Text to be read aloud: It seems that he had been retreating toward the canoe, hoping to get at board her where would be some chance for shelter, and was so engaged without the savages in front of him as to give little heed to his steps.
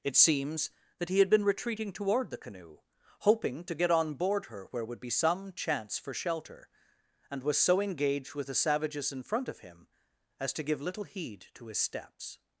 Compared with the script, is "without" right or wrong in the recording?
wrong